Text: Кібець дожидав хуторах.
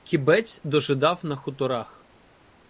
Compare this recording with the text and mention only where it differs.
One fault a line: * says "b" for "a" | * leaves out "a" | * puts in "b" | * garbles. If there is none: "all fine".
* puts in "на"